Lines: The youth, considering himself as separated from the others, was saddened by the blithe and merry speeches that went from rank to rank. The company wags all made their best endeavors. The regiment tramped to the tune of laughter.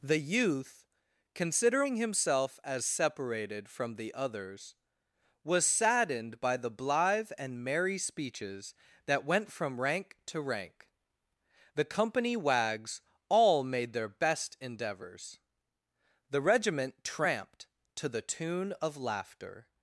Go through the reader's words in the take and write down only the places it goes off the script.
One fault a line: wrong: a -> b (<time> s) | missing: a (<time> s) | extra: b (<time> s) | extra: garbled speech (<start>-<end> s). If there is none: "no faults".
no faults